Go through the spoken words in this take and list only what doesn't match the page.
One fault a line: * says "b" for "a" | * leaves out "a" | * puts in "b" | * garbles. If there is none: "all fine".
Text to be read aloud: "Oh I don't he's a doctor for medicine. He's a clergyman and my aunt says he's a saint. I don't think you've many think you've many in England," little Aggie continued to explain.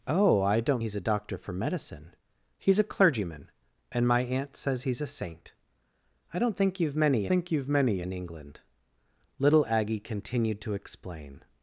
all fine